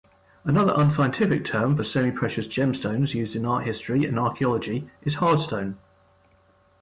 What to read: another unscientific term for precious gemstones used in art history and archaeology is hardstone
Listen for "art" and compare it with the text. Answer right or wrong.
right